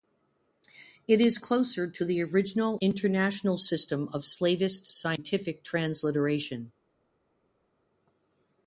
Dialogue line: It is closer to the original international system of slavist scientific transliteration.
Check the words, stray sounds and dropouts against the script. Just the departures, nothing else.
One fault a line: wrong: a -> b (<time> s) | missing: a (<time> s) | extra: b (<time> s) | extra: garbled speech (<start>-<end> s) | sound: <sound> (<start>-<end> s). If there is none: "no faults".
no faults